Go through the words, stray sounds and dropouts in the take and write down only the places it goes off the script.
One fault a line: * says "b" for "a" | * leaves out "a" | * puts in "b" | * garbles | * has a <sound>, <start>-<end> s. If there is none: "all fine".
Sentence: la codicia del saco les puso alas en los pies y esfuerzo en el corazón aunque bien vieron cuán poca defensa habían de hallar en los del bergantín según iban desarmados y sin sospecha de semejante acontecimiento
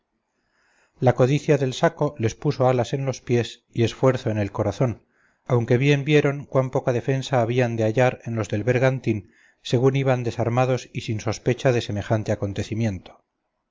all fine